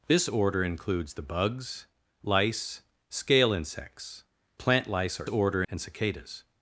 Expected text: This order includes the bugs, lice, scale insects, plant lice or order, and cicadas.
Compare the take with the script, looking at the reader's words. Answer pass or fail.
pass